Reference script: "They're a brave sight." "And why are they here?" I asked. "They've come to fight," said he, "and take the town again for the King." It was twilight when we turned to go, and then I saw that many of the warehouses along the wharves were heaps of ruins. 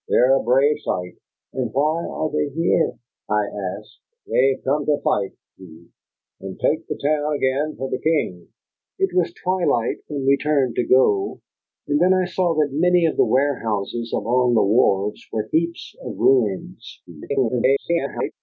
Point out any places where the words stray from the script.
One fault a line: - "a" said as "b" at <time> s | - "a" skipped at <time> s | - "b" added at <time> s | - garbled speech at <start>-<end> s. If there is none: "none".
- "said" skipped at 5.3 s
- garbled speech at 17.1-18.3 s